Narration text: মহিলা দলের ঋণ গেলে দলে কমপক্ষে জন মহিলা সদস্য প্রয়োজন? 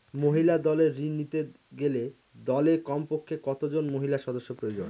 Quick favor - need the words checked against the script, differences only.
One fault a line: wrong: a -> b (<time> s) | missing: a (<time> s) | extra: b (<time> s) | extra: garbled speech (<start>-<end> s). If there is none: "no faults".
extra: নিতে (1.1 s)
extra: কত (3.4 s)